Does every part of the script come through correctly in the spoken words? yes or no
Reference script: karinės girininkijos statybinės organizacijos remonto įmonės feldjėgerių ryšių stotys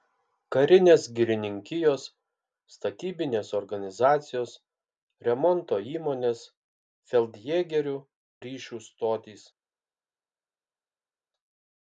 yes